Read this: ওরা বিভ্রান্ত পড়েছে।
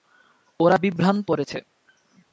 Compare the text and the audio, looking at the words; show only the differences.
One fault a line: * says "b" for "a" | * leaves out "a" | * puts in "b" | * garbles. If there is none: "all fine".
all fine